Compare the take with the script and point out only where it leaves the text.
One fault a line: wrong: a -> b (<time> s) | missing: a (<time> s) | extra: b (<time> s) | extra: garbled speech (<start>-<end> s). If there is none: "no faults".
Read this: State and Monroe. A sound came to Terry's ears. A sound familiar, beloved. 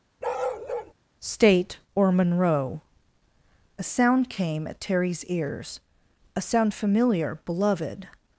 wrong: and -> or (1.9 s)
wrong: to -> at (4.7 s)